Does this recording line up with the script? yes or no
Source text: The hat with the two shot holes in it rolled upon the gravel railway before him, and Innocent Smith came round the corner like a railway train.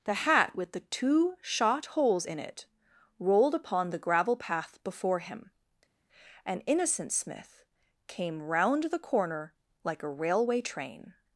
no